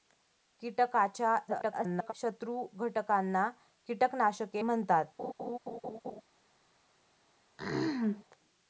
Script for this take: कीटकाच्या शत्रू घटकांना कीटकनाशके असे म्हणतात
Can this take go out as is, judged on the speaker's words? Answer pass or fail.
fail